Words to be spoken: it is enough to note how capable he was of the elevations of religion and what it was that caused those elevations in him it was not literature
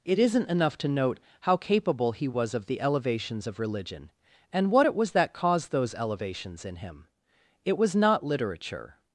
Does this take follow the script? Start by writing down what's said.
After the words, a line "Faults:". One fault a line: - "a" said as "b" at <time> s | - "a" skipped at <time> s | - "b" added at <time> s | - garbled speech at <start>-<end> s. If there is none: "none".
it isn't enough to note how capable he was of the elevations of religion and what it was that caused those elevations in him it was not literature
Faults:
- "is" said as "isn't" at 0.2 s